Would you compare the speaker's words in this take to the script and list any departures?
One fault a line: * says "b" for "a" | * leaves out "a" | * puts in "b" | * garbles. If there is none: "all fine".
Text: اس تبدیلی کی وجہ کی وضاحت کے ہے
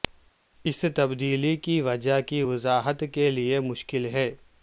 * puts in "لئے مشکل"